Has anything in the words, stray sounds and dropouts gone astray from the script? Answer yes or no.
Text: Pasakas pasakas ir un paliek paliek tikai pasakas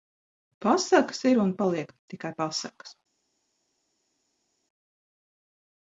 yes